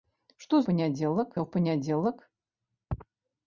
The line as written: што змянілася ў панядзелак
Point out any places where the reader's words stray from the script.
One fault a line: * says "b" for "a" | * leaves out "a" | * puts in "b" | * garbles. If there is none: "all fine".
* says "панядзелак" for "змянілася"